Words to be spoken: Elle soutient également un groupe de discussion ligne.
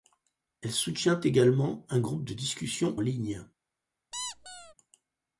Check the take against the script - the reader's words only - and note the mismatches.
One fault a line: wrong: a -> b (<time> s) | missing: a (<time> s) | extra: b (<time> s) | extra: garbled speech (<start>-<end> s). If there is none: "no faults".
no faults